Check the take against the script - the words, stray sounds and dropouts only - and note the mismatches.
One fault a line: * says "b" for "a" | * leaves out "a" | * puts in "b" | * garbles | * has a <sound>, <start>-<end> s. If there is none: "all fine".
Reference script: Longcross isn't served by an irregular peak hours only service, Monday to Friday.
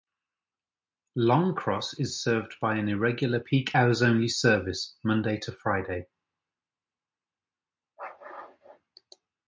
* says "is" for "isn't"